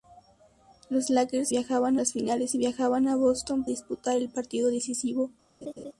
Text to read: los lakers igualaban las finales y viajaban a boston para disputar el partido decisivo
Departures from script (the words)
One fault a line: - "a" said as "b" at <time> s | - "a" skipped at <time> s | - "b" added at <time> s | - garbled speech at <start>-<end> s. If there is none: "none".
- "igualaban" said as "viajaban" at 1.5 s
- "para" skipped at 3.6 s